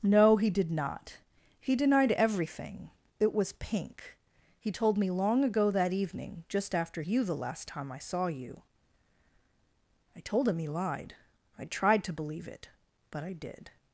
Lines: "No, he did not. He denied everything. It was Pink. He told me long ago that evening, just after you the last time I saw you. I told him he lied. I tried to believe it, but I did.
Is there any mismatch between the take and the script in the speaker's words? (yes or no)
no